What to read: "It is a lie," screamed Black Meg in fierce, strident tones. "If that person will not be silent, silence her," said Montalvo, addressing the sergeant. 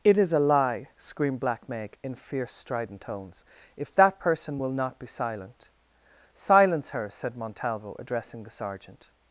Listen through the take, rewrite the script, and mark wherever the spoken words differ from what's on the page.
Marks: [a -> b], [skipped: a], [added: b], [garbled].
"It is a lie," screamed Black Meg in fierce, strident tones. "If that person will not be silent, silence her," said Montalvo, addressing the sergeant.